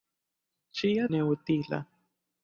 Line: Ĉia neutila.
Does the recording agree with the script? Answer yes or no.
yes